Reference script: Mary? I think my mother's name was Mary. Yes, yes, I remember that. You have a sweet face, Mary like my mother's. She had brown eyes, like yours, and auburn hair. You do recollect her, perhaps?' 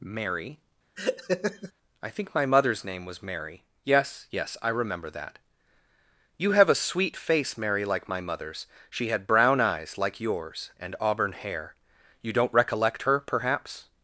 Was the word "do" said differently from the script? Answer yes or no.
yes